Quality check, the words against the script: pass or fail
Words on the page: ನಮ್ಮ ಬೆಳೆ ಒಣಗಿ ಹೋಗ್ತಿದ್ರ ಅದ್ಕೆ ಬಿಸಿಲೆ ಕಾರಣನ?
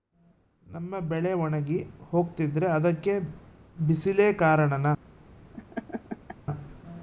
pass